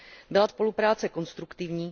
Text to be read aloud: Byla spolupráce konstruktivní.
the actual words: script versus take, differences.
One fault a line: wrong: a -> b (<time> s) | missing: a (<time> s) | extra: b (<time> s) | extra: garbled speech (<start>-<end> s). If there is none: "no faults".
no faults